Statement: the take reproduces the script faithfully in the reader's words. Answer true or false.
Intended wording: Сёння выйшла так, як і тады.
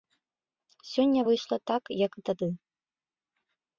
true